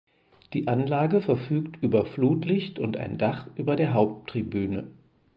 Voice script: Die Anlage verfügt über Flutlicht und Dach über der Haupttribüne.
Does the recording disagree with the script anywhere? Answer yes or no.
yes